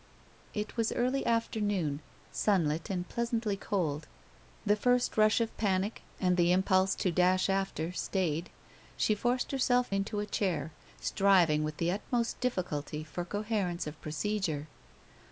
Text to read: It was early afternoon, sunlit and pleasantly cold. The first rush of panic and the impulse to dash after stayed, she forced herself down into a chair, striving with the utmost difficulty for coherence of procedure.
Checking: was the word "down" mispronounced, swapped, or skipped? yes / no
yes